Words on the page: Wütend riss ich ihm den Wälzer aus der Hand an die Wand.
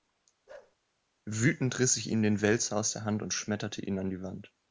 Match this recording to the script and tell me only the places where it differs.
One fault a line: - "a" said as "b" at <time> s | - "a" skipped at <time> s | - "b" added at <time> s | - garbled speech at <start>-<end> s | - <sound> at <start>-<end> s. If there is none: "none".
- bark at 0.5-0.8 s
- "und schmetterte ihn" added at 3.2 s